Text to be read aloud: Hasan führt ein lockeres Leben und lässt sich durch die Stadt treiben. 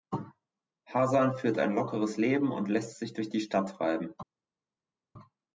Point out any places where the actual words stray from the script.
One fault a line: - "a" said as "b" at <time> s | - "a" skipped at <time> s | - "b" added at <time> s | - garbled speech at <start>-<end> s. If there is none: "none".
none